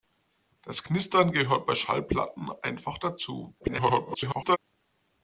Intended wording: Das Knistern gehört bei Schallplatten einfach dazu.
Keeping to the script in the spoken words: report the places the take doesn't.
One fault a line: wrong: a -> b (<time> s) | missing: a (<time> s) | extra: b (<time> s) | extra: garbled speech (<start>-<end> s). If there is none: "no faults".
extra: garbled speech (3.6-4.6 s)